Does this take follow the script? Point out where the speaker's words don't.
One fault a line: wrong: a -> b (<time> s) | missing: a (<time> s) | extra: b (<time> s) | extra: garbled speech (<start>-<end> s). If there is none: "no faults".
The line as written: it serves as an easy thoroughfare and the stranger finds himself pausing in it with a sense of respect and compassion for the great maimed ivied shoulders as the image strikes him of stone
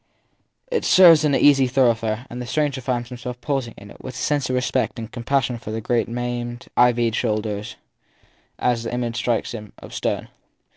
no faults